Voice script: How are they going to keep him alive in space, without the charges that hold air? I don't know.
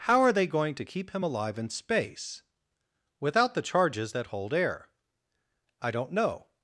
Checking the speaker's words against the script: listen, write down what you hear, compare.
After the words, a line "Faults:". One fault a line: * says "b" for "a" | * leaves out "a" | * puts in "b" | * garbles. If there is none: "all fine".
How are they going to keep him alive in space, without the charges that hold air? I don't know.
Faults:
all fine